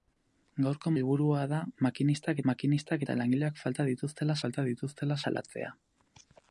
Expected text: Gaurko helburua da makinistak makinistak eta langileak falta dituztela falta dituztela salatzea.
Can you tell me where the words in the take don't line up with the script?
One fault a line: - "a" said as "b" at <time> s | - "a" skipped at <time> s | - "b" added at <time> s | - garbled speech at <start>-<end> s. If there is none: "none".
none